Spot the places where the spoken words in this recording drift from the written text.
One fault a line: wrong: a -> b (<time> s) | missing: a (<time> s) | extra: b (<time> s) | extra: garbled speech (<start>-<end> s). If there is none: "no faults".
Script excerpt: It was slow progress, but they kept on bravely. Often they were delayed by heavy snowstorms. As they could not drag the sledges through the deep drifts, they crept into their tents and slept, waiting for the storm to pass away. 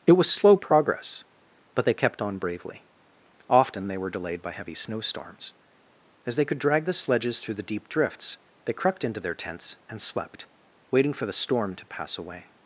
missing: not (6.6 s)